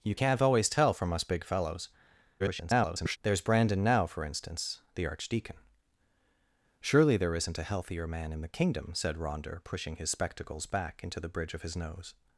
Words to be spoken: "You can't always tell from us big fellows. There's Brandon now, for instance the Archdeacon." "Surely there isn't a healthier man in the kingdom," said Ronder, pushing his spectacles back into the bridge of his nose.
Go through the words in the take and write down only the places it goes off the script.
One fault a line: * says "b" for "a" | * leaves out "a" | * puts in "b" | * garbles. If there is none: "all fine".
* garbles